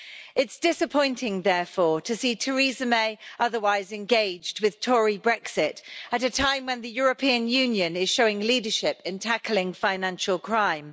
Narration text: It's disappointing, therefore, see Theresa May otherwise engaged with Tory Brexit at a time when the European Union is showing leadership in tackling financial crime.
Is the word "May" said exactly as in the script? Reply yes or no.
yes